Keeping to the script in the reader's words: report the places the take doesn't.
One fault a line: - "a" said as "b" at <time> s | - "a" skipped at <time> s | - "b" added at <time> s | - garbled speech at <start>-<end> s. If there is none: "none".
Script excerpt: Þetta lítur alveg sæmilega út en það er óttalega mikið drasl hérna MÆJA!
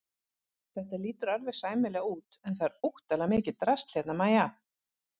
none